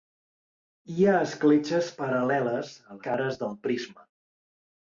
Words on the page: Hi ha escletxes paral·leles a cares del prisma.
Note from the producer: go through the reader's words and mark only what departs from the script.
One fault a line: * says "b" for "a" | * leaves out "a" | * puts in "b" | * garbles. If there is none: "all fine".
all fine